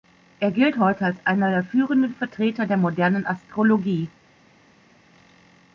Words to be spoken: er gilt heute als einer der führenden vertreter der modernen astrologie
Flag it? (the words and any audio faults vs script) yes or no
no